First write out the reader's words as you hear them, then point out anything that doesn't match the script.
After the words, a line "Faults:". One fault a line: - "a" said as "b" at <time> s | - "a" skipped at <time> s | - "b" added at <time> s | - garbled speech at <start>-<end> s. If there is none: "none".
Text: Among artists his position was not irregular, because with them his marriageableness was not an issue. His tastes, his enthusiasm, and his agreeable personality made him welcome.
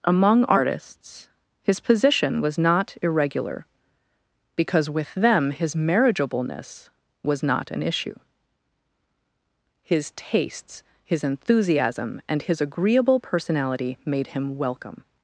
Among artists his position was not irregular, because with them his marriageableness was not an issue. His tastes, his enthusiasm, and his agreeable personality made him welcome.
Faults:
none